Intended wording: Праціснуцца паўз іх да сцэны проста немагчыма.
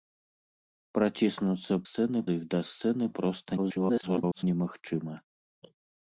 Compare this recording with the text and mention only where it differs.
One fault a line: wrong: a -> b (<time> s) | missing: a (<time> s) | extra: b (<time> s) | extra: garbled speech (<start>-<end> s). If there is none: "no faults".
wrong: паўз -> сцэны (1.9 s)
extra: garbled speech (3.6-4.4 s)